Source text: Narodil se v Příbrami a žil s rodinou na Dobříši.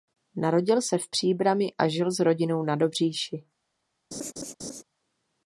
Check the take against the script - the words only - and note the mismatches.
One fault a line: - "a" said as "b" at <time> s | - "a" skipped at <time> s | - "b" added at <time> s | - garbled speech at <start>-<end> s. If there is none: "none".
none